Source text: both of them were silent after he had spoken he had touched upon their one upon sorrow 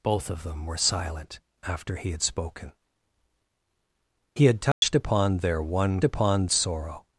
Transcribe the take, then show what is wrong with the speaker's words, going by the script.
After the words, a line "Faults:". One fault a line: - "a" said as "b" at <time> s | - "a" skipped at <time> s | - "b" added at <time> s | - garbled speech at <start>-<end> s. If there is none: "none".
both of them were silent after he had spoken he had touched upon their one upon sorrow
Faults:
none